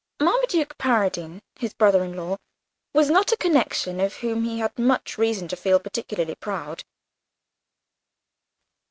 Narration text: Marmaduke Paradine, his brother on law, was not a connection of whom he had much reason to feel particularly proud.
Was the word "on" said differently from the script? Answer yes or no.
yes